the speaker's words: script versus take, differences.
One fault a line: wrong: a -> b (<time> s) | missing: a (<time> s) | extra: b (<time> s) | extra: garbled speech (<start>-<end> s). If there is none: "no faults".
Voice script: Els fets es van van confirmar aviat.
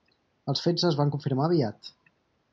missing: van (1.1 s)